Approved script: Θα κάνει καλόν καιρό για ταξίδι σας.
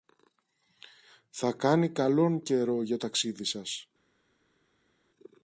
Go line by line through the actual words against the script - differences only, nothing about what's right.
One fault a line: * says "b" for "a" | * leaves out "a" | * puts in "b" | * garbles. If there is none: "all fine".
all fine